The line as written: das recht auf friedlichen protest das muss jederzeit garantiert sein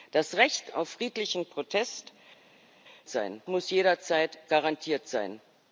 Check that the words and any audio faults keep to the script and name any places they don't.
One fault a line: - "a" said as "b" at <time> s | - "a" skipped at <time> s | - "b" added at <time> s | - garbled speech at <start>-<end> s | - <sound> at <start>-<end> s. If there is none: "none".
- "das" said as "sein" at 3.1 s